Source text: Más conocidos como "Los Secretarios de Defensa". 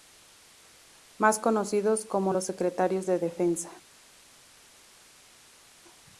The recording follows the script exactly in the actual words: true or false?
true